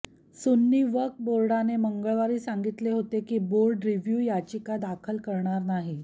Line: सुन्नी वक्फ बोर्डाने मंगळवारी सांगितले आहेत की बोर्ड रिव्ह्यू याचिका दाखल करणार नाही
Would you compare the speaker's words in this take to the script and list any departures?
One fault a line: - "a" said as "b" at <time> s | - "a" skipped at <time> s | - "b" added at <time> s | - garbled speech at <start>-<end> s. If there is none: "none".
- "आहेत" said as "होते" at 2.9 s